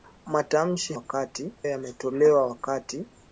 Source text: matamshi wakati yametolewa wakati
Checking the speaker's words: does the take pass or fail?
pass